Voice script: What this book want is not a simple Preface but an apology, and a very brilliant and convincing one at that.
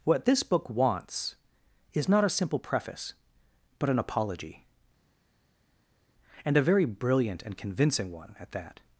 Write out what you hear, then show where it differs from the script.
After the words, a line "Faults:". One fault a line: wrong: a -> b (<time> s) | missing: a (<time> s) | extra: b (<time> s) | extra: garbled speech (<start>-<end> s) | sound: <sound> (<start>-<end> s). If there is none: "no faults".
What this book wants is not a simple Preface but an apology, and a very brilliant and convincing one at that.
Faults:
wrong: want -> wants (0.7 s)